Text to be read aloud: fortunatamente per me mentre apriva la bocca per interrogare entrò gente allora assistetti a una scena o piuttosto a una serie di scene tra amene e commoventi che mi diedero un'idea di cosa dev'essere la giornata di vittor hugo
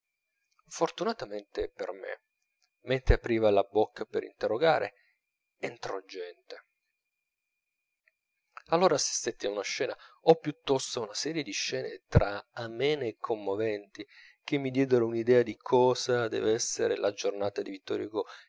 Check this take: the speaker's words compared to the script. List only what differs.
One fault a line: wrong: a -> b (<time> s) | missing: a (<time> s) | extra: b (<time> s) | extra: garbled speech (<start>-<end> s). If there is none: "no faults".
no faults